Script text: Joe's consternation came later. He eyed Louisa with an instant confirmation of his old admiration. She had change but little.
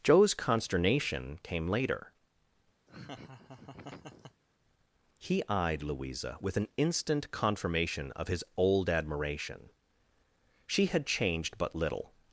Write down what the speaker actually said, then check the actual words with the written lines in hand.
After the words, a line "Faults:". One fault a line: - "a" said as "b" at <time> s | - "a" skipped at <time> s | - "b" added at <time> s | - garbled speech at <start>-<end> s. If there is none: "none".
Joe's consternation came later. He eyed Louisa with an instant confirmation of his old admiration. She had changed but little.
Faults:
- "change" said as "changed" at 11.1 s